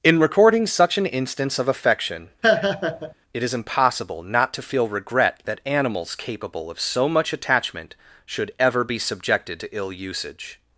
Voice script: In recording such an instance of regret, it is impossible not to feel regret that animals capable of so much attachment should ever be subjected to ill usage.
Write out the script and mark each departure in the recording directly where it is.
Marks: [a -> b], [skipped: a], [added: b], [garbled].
In recording such an instance of [regret, -> affection] it is impossible not to feel regret that animals capable of so much attachment should ever be subjected to ill usage.